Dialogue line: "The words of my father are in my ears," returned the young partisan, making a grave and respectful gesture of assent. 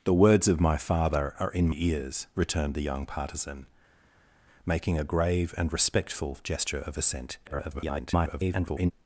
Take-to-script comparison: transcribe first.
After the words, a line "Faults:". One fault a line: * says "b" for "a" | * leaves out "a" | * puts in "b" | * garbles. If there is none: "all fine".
"The words of my father are in ears," returned the young partisan, making a grave and respectful gesture of assent. [garbled]
Faults:
* leaves out "my"
* garbles